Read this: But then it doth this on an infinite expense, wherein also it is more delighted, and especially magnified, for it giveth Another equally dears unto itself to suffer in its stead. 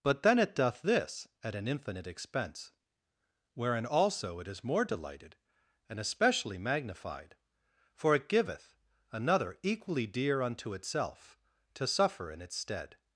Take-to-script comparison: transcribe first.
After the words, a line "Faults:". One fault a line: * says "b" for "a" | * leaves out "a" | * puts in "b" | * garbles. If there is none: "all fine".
But then it doth this at an infinite expense, wherein also it is more delighted, and especially magnified, for it giveth Another equally dear unto itself to suffer in its stead.
Faults:
* says "at" for "on"
* says "dear" for "dears"